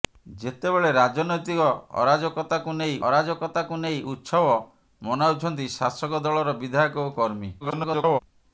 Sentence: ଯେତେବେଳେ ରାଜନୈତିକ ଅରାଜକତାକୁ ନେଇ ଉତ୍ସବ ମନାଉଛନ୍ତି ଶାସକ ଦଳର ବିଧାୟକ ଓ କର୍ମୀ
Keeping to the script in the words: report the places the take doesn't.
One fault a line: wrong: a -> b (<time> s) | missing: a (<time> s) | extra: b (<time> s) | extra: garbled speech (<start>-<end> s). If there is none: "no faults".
extra: ଅରାଜକତାକୁ ନେଇ (3.1 s)
extra: garbled speech (7.6-8.2 s)